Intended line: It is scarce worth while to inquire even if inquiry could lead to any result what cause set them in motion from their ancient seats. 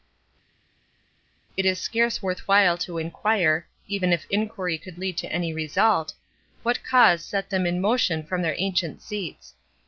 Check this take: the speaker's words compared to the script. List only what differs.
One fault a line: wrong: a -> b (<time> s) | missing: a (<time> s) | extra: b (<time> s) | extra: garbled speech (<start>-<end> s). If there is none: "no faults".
no faults